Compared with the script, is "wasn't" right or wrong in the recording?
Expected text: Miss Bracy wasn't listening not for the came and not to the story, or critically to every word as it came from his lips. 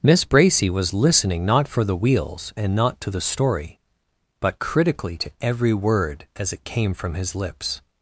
wrong